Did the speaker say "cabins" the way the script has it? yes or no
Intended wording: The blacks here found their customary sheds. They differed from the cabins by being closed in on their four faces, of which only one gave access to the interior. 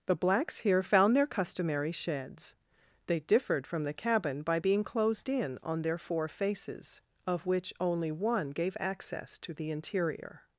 no